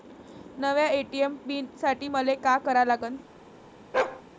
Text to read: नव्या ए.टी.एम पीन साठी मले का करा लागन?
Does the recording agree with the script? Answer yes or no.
yes